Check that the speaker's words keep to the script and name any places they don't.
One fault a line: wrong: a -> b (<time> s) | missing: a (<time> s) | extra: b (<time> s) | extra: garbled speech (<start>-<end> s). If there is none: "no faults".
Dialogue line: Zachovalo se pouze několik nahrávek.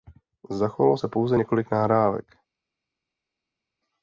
no faults